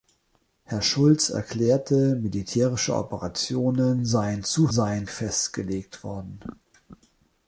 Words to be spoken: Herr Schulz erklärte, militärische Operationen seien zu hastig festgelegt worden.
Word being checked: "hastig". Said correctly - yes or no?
no